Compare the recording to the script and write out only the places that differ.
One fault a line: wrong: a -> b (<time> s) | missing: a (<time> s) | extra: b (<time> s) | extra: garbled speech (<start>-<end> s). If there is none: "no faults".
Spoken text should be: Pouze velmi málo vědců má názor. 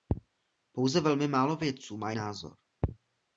no faults